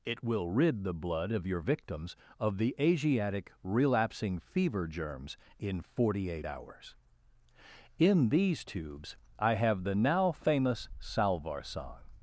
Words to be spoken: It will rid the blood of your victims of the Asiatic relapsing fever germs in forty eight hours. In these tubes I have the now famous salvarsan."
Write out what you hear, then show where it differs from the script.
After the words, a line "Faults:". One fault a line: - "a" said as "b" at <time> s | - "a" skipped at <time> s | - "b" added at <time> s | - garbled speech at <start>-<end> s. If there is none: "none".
It will rid the blood of your victims of the Asiatic relapsing fever germs in forty eight hours. In these tubes I have the now famous salvarsan."
Faults:
none